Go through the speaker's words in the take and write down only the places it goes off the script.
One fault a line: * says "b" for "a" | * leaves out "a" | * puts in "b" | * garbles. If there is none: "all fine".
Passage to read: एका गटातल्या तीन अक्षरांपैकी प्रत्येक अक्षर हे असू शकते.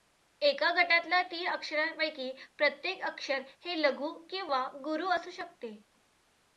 * puts in "लघु किंवा गुरू"